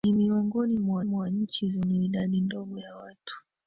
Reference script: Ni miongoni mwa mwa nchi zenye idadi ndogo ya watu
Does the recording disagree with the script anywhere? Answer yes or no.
no